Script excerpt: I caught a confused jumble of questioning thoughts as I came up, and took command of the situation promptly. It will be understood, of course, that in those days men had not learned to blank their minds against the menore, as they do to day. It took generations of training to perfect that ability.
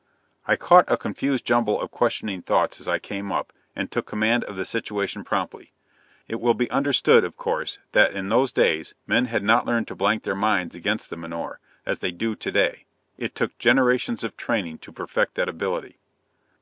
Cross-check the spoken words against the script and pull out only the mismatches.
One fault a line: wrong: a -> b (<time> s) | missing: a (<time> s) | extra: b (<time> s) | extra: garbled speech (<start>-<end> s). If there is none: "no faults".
no faults